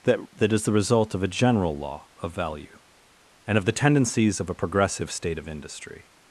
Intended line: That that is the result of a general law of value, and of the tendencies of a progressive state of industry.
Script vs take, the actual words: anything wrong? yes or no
no